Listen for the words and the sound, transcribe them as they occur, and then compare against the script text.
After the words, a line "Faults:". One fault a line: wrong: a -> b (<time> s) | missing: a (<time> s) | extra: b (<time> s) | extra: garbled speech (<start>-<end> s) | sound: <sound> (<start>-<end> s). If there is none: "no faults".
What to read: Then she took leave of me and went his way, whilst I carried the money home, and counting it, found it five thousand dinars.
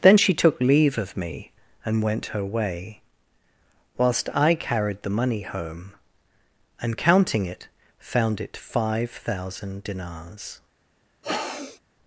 Then she took leave of me and went her way, whilst I carried the money home, and counting it, found it five thousand dinars.
Faults:
wrong: his -> her (2.3 s)
sound: sniff (11.2-11.8 s)